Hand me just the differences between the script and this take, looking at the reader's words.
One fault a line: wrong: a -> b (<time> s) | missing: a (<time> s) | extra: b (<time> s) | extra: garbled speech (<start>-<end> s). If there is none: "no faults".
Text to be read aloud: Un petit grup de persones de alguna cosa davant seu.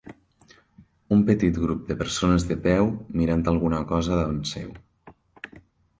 extra: peu mirant (2.7 s)